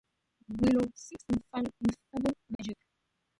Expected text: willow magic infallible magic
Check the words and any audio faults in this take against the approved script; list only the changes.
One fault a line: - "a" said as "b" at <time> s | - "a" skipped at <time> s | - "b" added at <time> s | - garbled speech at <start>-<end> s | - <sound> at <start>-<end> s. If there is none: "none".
- "magic" said as "seeks" at 0.9 s
- dropout at 2.6-2.6 s